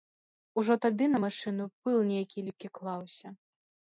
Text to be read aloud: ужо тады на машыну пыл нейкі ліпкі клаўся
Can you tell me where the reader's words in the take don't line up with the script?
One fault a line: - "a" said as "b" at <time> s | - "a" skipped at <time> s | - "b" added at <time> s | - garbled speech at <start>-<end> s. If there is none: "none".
none